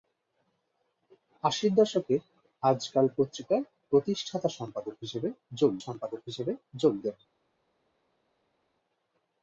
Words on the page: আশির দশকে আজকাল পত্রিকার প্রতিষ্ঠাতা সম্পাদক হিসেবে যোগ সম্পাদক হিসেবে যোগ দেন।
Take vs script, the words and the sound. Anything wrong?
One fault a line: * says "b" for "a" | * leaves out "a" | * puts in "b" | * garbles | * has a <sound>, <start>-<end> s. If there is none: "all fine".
all fine